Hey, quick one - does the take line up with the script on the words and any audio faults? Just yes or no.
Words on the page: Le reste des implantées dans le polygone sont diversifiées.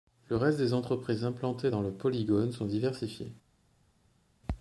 no